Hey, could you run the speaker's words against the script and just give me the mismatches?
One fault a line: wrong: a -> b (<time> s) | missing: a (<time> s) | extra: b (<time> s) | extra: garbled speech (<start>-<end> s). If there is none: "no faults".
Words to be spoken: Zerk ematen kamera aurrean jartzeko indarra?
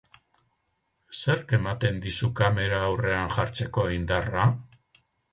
extra: dizu (2.0 s)